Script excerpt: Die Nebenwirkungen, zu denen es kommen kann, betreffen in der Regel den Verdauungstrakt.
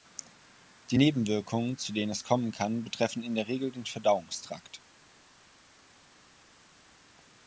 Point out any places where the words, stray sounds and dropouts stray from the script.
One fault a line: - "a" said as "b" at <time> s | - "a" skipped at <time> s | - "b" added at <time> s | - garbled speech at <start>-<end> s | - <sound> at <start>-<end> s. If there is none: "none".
none